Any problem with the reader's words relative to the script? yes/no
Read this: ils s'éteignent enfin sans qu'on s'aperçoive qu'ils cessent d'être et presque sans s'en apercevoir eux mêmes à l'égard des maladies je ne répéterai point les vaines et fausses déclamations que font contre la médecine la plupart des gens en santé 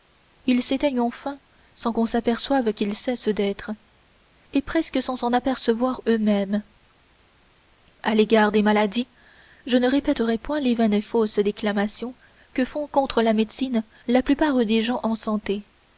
no